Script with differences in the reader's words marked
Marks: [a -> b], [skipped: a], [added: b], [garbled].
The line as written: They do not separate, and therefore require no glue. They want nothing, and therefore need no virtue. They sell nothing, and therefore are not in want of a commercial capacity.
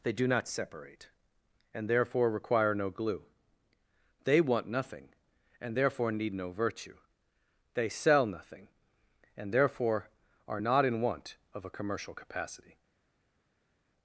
They do not separate, and therefore require no glue. They want nothing, and therefore need no virtue. They sell nothing, and therefore are not in want of a commercial capacity.